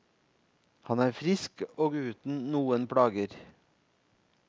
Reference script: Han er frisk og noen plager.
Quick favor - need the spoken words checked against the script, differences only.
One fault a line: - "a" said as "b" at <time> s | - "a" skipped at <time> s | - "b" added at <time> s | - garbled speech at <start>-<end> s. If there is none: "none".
- "uten" added at 2.0 s